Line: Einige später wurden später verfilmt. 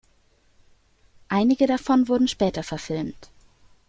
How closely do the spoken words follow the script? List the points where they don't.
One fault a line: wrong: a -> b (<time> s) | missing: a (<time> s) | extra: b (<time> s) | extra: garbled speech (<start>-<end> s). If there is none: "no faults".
wrong: später -> davon (1.7 s)